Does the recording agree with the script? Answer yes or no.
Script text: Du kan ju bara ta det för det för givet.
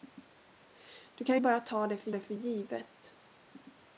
yes